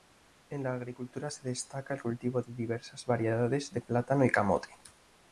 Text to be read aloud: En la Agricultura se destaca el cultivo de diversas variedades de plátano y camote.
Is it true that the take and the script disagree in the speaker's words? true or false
false